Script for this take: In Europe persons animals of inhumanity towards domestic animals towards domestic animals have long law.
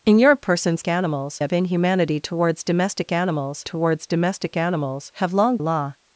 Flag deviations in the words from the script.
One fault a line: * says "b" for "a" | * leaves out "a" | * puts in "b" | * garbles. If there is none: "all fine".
all fine